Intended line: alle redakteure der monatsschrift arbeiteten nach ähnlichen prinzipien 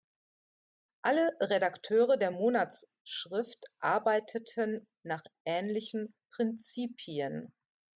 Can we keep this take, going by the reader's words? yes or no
yes